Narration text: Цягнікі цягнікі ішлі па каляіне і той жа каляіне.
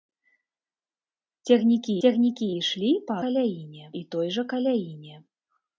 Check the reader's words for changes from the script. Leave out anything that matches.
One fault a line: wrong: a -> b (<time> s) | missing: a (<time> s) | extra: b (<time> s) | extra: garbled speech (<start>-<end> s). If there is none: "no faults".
no faults